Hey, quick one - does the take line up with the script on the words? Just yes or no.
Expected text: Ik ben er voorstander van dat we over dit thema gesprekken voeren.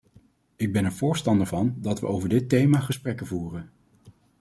yes